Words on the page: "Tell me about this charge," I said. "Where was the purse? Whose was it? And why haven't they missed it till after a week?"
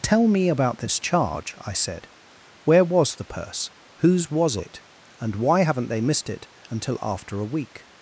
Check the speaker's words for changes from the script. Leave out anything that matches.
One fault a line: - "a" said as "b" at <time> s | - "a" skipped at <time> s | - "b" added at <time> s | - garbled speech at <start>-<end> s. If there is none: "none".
- "till" said as "until" at 6.7 s